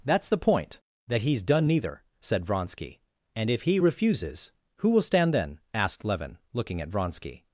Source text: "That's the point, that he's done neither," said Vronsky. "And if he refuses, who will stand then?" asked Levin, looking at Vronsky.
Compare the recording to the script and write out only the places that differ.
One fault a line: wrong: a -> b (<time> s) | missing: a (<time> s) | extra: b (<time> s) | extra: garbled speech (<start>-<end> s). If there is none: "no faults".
no faults